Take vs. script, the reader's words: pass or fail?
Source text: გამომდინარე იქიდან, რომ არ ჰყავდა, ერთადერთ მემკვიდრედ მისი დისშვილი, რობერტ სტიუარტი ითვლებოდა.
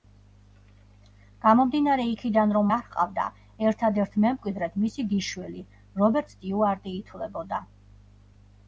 pass